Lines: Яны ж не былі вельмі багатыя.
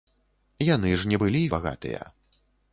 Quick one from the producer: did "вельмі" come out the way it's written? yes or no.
no